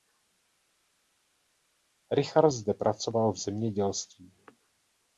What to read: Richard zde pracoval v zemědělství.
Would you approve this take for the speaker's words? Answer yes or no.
yes